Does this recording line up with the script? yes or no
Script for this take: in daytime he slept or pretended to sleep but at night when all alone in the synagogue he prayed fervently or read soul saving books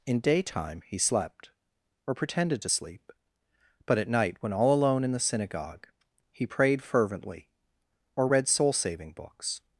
yes